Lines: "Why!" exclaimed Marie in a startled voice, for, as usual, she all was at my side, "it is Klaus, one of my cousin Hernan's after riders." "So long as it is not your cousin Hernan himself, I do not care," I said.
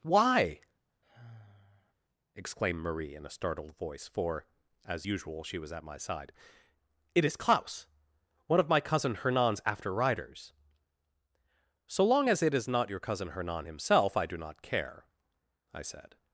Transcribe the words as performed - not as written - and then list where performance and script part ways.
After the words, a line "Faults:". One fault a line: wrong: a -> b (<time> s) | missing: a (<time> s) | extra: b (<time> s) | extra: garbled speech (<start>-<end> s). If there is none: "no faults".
"Why!" exclaimed Marie in a startled voice, for, as usual, she was at my side, "it is Klaus, one of my cousin Hernan's after riders." "So long as it is not your cousin Hernan himself, I do not care," I said.
Faults:
missing: all (5.6 s)